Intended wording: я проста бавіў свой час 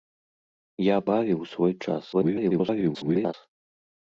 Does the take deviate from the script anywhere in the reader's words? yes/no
yes